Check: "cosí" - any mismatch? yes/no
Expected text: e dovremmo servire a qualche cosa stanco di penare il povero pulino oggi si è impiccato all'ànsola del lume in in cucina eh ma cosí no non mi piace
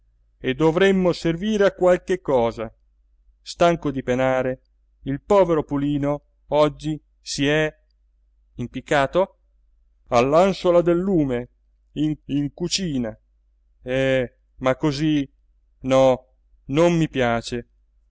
no